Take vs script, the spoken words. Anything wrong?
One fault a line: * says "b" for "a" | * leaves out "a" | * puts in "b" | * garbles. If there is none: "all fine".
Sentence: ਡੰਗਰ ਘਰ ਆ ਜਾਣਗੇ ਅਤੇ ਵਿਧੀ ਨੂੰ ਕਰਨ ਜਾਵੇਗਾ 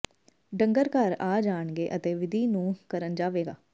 all fine